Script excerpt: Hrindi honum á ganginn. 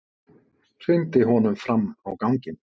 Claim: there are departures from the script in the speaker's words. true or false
true